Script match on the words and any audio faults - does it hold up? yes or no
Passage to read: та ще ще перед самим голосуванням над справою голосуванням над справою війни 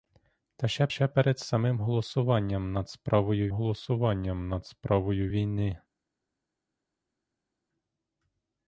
yes